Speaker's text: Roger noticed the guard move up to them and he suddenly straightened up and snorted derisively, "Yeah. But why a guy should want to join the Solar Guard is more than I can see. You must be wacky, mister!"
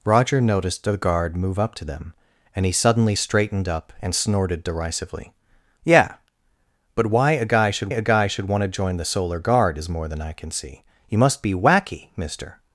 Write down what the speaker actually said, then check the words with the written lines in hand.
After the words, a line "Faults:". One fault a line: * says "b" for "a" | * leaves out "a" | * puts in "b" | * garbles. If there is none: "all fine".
Roger noticed the guard move up to them and he suddenly straightened up and snorted derisively, "Yeah. But why a guy should a guy should want to join the Solar Guard is more than I can see. You must be wacky, mister!"
Faults:
* puts in "a guy should"